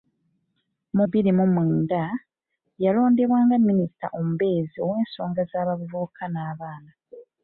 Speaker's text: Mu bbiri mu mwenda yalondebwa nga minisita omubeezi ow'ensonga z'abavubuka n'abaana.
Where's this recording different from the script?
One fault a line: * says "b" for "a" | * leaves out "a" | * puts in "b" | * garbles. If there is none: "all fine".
all fine